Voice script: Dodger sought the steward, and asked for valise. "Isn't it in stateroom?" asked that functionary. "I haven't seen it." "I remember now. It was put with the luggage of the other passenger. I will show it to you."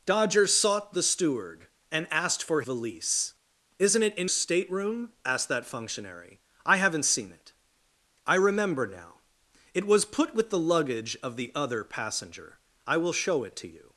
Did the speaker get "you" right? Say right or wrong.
right